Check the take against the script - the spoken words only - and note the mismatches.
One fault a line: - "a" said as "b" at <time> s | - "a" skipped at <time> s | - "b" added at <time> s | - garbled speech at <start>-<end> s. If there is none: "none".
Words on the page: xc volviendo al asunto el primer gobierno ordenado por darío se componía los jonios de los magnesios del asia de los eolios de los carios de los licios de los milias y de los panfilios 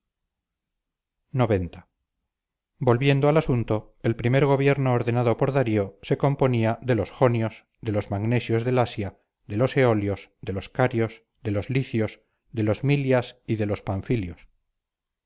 - "de" added at 6.8 s